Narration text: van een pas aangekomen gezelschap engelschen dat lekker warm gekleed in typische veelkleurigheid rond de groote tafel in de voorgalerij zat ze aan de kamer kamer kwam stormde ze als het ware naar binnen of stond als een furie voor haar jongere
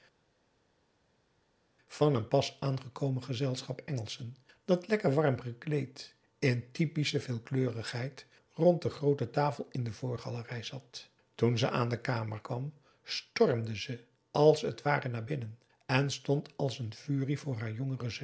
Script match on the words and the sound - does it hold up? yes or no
no